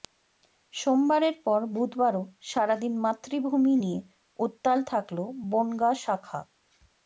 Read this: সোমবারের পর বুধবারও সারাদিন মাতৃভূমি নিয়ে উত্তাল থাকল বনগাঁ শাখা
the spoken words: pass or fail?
pass